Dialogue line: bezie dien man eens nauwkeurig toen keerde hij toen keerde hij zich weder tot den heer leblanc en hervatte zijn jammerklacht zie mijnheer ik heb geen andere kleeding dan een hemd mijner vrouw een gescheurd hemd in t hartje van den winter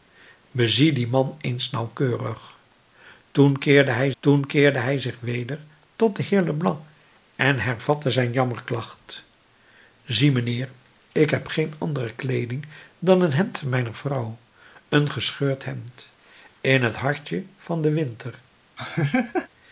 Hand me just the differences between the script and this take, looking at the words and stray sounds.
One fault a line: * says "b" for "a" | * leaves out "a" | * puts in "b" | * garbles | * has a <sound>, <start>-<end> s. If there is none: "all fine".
* has a laugh, 18.8-19.5 s